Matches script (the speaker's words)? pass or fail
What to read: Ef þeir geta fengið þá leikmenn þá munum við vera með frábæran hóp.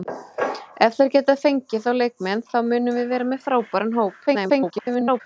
fail